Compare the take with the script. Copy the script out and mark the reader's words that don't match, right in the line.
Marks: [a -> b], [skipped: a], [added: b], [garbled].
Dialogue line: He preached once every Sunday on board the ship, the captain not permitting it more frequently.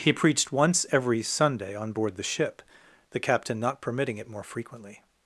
He preached once every Sunday on board the ship, the captain not permitting it more frequently.